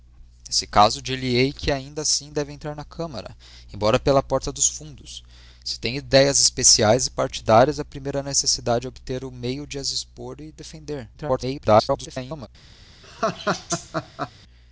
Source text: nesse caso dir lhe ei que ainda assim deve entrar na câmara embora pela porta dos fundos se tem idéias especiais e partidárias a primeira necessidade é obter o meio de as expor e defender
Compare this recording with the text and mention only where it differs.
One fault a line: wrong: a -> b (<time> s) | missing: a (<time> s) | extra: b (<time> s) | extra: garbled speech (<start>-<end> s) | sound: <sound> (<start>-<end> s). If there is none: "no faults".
extra: garbled speech (11.1-12.5 s)
sound: laugh (13.0-14.3 s)